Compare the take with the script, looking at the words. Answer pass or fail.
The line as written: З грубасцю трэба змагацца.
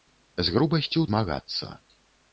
fail